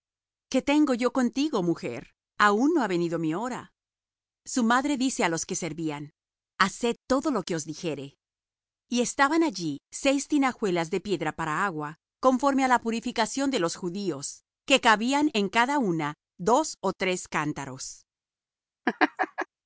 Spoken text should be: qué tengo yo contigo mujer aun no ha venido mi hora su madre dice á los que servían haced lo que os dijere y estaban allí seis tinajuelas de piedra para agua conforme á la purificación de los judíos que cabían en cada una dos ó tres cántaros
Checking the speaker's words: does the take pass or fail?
fail